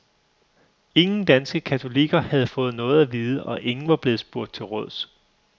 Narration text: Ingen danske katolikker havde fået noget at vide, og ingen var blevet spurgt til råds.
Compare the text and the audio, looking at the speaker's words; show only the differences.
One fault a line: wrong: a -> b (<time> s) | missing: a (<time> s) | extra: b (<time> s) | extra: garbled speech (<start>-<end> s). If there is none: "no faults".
no faults